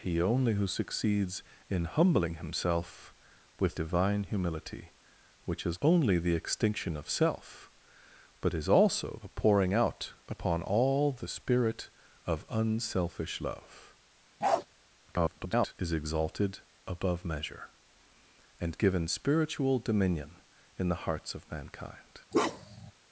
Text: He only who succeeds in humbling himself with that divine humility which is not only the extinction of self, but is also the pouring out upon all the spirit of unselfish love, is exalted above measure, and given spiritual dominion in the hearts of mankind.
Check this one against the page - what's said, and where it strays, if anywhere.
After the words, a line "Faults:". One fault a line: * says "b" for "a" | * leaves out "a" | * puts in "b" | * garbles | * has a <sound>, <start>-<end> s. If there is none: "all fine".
He only who succeeds in humbling himself with divine humility which is only the extinction of self, but is also the pouring out upon all the spirit of unselfish love, [garbled] is exalted above measure, and given spiritual dominion in the hearts of mankind.
Faults:
* leaves out "that"
* leaves out "not"
* has a bark, 14.4-14.7 s
* garbles
* has a bark, 22.3-22.9 s